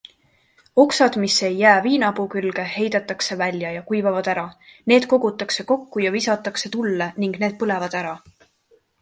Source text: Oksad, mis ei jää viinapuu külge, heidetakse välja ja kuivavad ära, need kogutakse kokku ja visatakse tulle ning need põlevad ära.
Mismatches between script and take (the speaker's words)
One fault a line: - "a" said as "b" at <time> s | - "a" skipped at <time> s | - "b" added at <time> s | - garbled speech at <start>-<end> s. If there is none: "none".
none